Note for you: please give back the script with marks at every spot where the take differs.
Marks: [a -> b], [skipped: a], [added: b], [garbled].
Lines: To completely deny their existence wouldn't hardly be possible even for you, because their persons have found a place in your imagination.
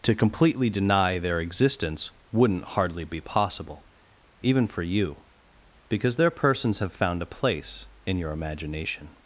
To completely deny their existence wouldn't hardly be possible even for you, because their persons have found a place in your imagination.